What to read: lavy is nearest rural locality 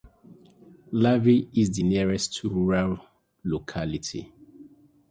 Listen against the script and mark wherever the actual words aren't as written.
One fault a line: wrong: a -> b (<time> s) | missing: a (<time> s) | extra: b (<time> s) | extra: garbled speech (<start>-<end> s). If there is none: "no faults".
extra: the (1.7 s)